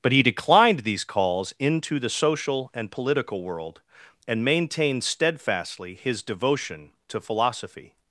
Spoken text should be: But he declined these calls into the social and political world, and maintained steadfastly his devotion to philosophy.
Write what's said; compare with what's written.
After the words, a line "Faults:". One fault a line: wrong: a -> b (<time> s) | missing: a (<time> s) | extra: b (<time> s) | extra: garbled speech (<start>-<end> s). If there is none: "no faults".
But he declined these calls into the social and political world, and maintained steadfastly his devotion to philosophy.
Faults:
no faults